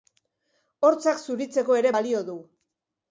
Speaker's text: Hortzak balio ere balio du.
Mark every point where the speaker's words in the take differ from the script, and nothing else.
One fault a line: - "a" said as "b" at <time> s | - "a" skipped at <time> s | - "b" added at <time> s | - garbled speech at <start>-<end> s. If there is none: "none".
- "balio" said as "zuritzeko" at 1.2 s